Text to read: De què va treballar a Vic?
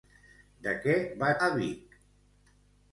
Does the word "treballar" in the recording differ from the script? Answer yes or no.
yes